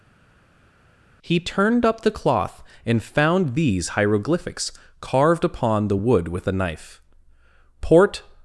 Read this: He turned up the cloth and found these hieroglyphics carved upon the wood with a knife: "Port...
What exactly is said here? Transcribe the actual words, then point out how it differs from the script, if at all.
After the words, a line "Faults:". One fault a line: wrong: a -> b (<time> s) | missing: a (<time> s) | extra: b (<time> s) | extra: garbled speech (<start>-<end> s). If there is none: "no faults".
He turned up the cloth and found these hieroglyphics carved upon the wood with a knife: "Port...
Faults:
no faults